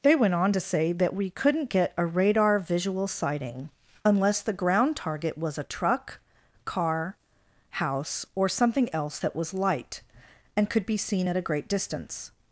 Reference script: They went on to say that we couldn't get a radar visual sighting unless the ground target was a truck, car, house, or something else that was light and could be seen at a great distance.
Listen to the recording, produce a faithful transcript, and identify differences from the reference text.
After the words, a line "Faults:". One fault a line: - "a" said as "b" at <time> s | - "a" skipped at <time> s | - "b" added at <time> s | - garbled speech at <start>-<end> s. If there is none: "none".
They went on to say that we couldn't get a radar visual sighting unless the ground target was a truck, car, house, or something else that was light and could be seen at a great distance.
Faults:
none